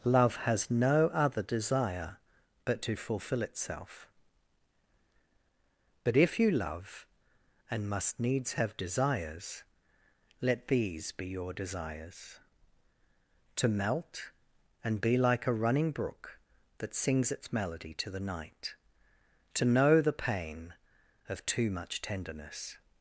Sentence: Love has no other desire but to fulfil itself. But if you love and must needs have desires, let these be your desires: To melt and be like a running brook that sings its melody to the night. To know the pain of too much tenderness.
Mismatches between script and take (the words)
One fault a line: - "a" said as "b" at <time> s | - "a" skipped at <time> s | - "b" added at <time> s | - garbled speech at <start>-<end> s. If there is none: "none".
none